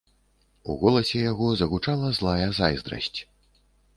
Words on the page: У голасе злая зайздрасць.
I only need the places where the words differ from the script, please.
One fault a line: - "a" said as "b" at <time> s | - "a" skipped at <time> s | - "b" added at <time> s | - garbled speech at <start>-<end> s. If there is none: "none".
- "яго загучала" added at 1.3 s